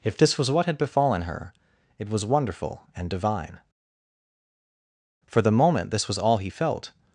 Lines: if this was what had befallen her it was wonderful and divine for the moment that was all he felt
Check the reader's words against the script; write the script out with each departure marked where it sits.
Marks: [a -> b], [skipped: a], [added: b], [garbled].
if this was what had befallen her it was wonderful and divine for the moment [that -> this] was all he felt